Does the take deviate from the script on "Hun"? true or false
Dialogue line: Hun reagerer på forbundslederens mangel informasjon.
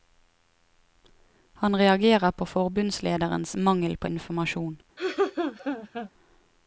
true